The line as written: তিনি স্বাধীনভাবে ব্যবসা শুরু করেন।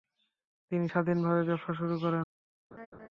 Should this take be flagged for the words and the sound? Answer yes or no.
yes